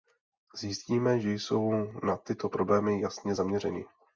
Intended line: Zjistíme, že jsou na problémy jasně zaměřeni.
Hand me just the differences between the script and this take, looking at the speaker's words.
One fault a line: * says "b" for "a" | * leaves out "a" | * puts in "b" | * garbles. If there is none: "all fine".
* puts in "tyto"